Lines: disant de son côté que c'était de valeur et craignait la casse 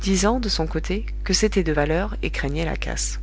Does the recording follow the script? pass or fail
pass